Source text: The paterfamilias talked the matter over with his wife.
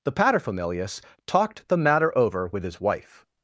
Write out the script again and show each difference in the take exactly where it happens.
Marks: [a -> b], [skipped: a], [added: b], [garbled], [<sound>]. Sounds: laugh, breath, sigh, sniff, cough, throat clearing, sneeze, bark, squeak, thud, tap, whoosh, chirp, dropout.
The paterfamilias talked the matter over with his wife.